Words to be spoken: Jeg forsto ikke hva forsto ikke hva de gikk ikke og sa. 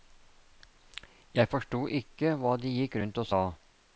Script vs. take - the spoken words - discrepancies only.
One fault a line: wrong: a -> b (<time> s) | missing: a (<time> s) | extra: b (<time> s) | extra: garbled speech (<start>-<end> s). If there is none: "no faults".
missing: forsto ikke hva (2.6 s)
wrong: ikke -> rundt (3.0 s)